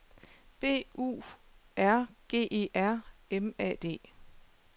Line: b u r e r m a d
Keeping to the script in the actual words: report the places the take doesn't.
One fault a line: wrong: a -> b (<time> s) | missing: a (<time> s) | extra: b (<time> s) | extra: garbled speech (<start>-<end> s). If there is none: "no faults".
extra: g (2.3 s)